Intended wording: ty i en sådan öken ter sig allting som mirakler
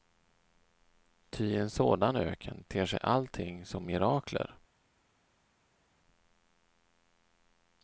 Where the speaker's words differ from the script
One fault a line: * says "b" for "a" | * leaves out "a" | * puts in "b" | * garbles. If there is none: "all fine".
all fine